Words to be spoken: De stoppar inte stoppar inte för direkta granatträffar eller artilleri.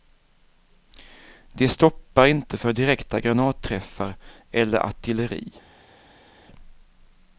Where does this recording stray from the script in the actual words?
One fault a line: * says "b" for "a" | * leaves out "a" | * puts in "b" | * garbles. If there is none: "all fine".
* leaves out "stoppar inte"